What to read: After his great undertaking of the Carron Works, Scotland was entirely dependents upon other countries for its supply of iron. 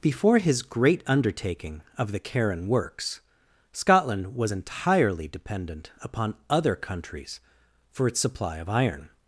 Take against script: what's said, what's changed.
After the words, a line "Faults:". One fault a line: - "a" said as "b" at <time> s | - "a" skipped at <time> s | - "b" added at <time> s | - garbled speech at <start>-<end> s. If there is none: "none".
Before his great undertaking of the Carron Works, Scotland was entirely dependent upon other countries for its supply of iron.
Faults:
- "After" said as "Before" at 0.0 s
- "dependents" said as "dependent" at 5.3 s